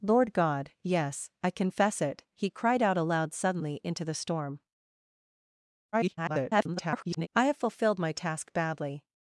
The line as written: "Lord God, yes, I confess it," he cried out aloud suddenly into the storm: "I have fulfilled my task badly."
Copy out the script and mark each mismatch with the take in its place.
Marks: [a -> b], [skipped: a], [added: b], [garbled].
"Lord God, yes, I confess it," he cried out aloud suddenly into the storm: [garbled] "I have fulfilled my task badly."